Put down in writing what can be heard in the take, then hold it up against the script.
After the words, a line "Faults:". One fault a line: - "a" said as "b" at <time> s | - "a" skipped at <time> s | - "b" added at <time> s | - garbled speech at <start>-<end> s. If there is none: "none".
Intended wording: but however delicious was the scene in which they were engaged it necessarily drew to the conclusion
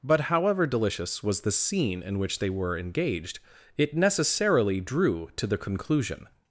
but however delicious was the scene in which they were engaged it necessarily drew to the conclusion
Faults:
none